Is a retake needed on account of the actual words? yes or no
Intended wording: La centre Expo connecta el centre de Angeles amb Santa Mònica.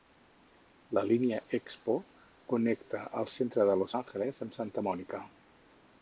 yes